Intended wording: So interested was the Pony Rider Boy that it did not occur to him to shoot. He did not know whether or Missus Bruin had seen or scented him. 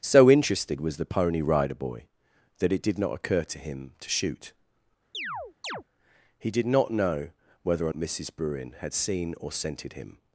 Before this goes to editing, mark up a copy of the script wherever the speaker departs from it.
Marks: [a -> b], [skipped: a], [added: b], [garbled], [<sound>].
So interested was the Pony Rider Boy that it did not occur to him to shoot. [chirp] He did not know whether or Missus Bruin had seen or scented him.